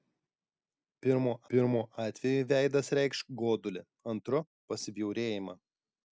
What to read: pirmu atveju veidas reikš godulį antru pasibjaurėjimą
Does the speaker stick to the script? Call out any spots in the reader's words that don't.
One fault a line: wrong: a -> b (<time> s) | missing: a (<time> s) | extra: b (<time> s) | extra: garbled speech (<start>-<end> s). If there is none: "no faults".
extra: pirmu (1.5 s)